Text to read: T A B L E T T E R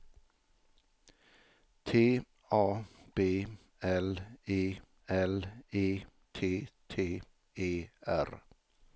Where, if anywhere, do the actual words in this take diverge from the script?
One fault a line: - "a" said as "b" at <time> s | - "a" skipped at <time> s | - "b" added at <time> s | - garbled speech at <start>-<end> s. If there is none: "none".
- "L E" added at 5.1 s